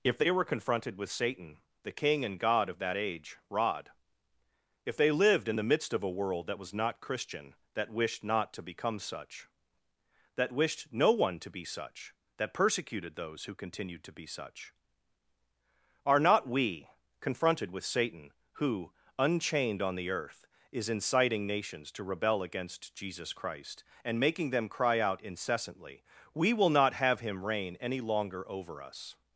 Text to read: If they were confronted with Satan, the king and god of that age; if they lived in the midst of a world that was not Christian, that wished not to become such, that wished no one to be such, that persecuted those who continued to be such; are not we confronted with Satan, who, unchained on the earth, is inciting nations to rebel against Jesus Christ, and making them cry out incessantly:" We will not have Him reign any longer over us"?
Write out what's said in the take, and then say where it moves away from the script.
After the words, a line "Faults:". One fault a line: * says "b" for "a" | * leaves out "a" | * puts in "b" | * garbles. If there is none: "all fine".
If they were confronted with Satan, the king and god of that age; rod if they lived in the midst of a world that was not Christian, that wished not to become such, that wished no one to be such, that persecuted those who continued to be such; are not we confronted with Satan, who, unchained on the earth, is inciting nations to rebel against Jesus Christ, and making them cry out incessantly:" We will not have Him reign any longer over us"?
Faults:
* puts in "rod"